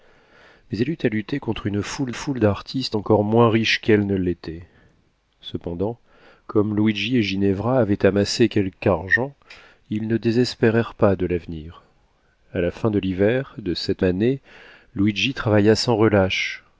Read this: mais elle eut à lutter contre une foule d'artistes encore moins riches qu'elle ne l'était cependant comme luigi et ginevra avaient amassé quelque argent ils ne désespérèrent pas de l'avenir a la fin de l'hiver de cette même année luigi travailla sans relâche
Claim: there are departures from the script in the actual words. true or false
true